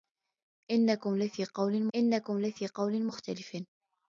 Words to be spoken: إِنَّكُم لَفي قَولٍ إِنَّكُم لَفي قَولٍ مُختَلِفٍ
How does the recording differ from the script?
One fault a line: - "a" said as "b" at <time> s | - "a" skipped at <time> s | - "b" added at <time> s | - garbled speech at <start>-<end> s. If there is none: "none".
none